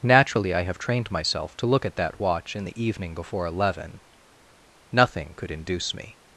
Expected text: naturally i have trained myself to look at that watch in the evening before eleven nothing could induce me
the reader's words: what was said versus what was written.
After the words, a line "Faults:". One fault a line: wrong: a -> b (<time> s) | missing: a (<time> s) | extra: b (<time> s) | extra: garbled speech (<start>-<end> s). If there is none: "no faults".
naturally i have trained myself to look at that watch in the evening before eleven nothing could induce me
Faults:
no faults